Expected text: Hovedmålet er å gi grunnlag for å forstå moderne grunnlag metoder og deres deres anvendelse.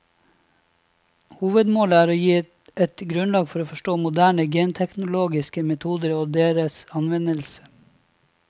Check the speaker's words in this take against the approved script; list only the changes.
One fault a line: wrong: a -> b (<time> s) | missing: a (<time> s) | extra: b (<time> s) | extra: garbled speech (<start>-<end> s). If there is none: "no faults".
extra: et (2.9 s)
wrong: grunnlag -> genteknologiske (4.5 s)
missing: deres (6.8 s)